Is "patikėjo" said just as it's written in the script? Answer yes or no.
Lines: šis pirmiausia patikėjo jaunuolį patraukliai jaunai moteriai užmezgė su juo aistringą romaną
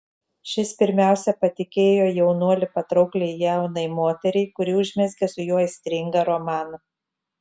yes